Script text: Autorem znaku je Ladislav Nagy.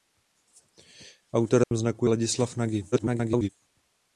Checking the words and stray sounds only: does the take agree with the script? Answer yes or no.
no